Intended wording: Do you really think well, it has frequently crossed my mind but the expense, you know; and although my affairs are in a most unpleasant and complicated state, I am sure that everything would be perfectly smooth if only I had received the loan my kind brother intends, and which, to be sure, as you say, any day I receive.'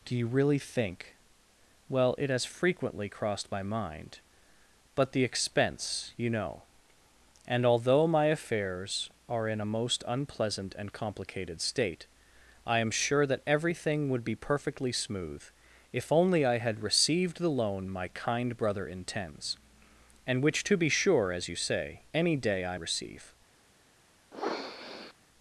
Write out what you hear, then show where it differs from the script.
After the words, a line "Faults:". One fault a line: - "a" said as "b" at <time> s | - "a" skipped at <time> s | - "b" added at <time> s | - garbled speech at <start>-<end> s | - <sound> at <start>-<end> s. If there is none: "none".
Do you really think well, it has frequently crossed my mind but the expense, you know; and although my affairs are in a most unpleasant and complicated state, I am sure that everything would be perfectly smooth if only I had received the loan my kind brother intends, and which, to be sure, as you say, any day I receive.'
Faults:
- sniff at 24.3-25.1 s